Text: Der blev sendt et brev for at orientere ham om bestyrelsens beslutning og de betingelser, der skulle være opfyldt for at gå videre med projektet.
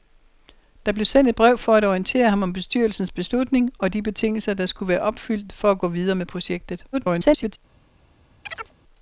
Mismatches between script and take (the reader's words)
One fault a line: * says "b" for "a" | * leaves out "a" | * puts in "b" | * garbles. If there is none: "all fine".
* garbles